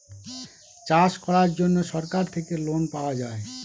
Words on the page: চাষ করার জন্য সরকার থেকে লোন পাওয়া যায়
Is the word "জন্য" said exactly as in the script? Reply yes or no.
yes